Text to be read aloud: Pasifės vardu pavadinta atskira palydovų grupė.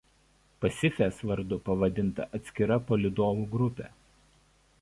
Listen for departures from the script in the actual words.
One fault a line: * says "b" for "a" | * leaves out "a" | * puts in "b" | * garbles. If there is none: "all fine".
all fine